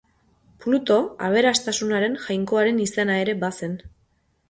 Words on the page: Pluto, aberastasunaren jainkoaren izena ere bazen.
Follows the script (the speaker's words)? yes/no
yes